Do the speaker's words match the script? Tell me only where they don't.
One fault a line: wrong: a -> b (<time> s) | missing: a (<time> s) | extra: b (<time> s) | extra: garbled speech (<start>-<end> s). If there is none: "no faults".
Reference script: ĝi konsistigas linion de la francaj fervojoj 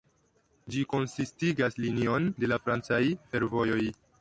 no faults